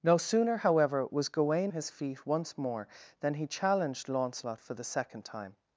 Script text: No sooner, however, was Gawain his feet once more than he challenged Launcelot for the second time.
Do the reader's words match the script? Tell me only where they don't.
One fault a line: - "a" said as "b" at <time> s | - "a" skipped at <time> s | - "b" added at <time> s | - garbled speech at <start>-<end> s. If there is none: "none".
none